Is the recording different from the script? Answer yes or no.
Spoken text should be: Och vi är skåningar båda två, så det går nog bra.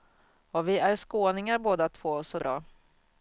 yes